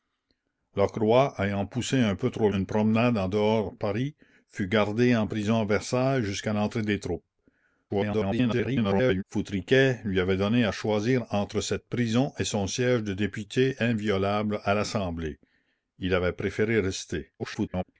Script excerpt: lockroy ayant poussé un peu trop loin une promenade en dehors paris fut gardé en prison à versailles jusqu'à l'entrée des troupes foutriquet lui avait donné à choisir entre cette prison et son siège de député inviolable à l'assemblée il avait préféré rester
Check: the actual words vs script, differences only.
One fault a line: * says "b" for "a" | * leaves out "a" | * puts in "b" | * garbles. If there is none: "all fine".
* leaves out "loin"
* garbles
* garbles